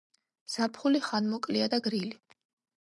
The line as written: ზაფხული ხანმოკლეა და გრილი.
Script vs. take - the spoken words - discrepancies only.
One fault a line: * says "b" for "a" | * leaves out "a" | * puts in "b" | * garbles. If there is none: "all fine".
all fine